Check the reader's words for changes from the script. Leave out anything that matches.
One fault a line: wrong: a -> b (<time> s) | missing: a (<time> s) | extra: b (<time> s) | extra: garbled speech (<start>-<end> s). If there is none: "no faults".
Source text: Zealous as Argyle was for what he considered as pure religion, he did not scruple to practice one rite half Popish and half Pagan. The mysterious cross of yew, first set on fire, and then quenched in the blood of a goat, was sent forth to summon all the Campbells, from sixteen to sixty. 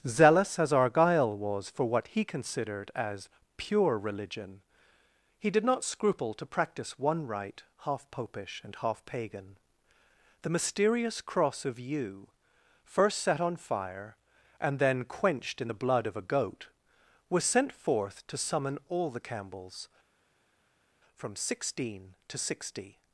no faults